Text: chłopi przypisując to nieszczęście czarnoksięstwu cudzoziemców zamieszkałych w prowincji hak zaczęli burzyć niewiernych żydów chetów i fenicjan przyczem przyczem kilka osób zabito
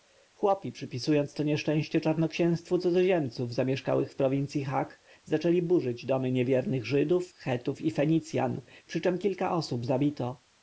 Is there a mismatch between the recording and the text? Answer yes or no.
yes